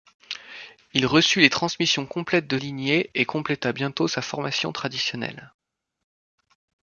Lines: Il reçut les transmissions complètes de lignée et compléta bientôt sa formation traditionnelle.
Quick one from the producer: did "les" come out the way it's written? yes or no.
yes